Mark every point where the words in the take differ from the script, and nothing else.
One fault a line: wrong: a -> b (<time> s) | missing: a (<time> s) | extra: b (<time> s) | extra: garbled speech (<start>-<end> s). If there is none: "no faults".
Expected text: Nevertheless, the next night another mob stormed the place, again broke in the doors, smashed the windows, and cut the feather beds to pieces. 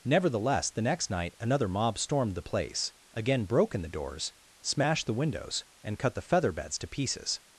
no faults